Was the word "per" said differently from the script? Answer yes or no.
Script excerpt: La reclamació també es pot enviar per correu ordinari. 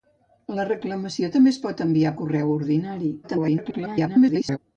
yes